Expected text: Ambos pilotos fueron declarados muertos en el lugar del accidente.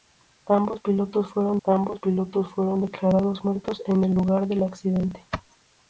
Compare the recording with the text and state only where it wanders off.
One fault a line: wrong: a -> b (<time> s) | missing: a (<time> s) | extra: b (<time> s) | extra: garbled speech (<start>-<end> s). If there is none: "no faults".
extra: ambos pilotos fueron (1.6 s)